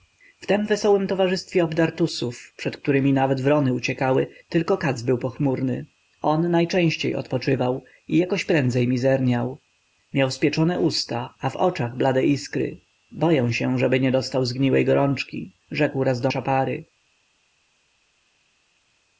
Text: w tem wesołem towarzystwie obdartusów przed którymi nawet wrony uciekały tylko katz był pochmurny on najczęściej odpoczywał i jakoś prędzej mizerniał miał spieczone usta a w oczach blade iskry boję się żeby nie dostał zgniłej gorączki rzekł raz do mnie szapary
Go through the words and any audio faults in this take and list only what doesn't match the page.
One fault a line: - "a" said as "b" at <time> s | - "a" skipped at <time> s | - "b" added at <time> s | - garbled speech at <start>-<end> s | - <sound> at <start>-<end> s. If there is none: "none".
- "mnie" skipped at 16.3 s